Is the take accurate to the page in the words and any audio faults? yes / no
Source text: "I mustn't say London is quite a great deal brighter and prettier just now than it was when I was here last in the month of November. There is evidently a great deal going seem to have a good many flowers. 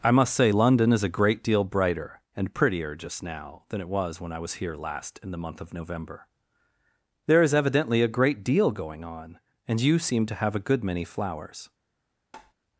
no